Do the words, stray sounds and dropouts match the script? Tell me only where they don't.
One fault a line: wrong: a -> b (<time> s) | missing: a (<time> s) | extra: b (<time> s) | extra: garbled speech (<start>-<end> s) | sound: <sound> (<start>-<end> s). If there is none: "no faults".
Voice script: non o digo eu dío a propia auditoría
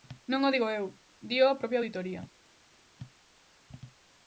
no faults